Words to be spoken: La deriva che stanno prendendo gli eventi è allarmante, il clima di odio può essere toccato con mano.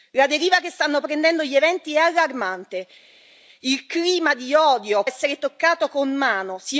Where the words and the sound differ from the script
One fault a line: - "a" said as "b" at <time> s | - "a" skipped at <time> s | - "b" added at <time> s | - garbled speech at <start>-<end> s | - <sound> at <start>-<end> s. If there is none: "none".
- "può" skipped at 5.0 s